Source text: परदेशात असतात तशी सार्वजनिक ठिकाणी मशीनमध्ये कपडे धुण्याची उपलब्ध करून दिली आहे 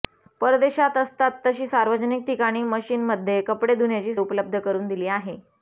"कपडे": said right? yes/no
yes